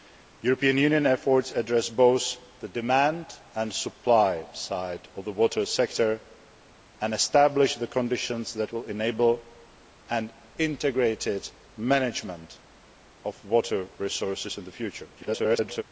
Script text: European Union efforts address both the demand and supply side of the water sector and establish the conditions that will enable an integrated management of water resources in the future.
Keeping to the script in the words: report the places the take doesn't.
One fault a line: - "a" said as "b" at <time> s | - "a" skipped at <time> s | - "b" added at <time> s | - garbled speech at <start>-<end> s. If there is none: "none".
- garbled speech at 15.2-15.8 s